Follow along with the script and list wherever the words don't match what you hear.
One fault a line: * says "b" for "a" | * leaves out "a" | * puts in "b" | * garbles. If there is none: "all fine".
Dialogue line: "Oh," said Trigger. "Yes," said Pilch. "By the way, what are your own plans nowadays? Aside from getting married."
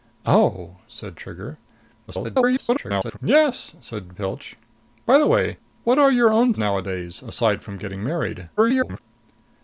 * garbles
* leaves out "plans"
* garbles